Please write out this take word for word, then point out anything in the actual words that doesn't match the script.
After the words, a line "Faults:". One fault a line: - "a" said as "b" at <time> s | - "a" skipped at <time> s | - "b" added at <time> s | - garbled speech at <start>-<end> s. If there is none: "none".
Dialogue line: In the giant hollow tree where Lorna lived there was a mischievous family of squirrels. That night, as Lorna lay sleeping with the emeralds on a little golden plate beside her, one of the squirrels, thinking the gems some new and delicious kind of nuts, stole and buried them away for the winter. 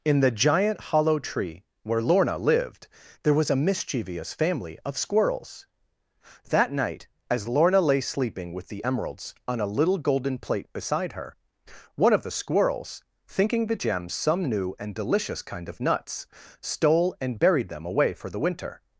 In the giant hollow tree where Lorna lived there was a mischievous family of squirrels. That night, as Lorna lay sleeping with the emeralds on a little golden plate beside her, one of the squirrels, thinking the gems some new and delicious kind of nuts, stole and buried them away for the winter.
Faults:
none